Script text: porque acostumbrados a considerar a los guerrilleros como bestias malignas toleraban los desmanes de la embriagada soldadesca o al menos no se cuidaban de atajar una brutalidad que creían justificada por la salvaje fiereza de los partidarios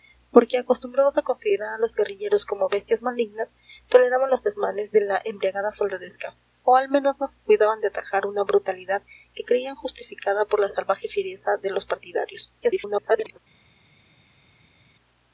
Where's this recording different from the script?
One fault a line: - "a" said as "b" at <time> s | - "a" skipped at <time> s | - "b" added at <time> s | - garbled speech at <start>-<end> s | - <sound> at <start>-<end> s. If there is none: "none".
- garbled speech at 12.6-13.4 s